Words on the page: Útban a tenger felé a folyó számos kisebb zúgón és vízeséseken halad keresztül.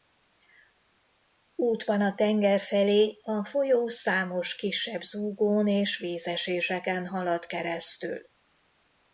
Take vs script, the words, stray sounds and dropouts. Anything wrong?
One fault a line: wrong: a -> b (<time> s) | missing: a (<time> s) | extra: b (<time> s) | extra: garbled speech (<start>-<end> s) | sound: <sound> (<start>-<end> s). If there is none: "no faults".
no faults